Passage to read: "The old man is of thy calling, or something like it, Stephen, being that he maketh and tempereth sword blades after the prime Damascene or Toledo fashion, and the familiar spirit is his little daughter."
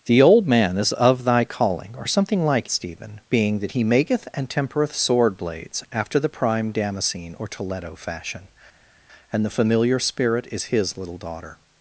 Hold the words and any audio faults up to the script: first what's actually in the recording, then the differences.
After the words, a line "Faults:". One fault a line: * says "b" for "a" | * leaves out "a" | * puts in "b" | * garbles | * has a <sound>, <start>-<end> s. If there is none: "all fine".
"The old man is of thy calling, or something like Stephen, being that he maketh and tempereth sword blades after the prime Damascene or Toledo fashion, and the familiar spirit is his little daughter."
Faults:
* leaves out "it"